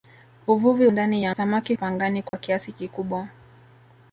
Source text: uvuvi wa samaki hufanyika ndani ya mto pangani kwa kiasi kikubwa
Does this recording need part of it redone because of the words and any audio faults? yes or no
yes